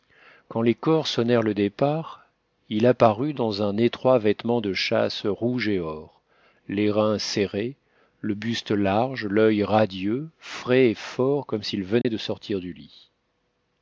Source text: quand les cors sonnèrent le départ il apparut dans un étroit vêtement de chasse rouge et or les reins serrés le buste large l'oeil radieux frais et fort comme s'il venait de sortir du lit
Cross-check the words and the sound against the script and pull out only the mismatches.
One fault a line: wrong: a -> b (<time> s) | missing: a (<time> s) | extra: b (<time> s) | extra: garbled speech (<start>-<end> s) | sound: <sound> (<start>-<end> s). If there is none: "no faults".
sound: dropout (12.0-12.0 s)